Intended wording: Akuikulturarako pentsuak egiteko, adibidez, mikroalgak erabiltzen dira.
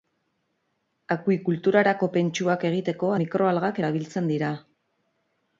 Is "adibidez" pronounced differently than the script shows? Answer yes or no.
yes